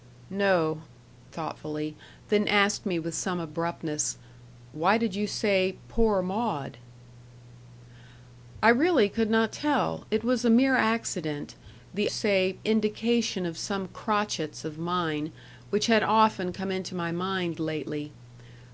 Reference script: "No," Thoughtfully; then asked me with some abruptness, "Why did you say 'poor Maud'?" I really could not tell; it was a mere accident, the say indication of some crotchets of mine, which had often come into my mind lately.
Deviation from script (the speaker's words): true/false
false